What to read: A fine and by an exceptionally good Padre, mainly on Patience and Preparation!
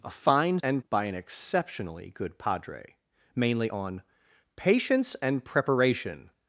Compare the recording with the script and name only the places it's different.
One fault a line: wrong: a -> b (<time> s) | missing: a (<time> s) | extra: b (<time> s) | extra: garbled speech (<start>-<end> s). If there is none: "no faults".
no faults